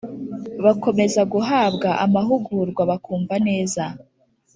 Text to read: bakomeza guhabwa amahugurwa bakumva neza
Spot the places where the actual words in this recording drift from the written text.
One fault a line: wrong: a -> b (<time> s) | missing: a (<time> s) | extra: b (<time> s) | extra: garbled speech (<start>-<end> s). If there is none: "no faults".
no faults